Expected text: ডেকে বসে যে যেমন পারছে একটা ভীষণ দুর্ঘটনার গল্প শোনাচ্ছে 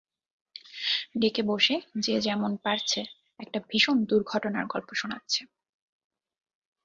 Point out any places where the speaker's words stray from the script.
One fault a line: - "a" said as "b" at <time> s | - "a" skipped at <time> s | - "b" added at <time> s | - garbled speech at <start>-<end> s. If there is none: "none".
none